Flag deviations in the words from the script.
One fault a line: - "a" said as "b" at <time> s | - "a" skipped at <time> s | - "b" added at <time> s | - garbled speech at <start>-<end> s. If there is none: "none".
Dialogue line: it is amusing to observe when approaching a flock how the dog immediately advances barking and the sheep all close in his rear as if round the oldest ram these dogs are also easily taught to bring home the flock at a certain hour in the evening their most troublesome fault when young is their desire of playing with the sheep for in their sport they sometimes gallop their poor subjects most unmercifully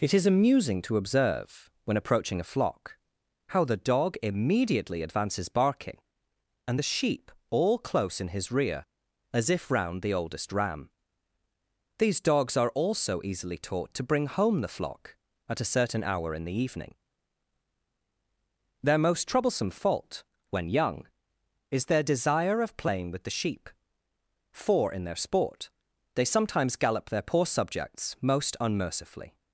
none